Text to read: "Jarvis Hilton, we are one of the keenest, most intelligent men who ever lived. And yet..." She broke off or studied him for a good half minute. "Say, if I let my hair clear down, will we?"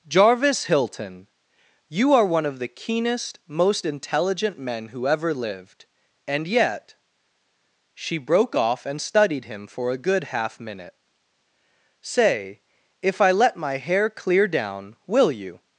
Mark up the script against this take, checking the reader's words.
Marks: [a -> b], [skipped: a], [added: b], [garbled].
"Jarvis Hilton, [we -> you] are one of the keenest, most intelligent men who ever lived. And yet..." She broke off [or -> and] studied him for a good half minute. "Say, if I let my hair clear down, will [we?" -> you]